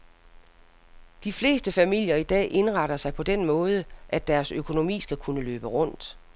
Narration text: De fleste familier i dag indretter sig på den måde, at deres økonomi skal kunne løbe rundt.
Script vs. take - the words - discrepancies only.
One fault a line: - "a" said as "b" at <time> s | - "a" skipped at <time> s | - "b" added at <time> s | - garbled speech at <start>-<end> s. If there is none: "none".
none